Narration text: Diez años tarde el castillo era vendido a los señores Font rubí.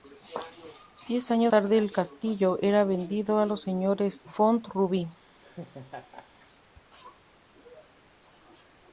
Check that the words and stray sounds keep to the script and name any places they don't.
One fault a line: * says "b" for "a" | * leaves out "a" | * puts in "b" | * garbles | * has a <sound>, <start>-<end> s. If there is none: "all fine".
* has a laugh, 5.4-6.5 s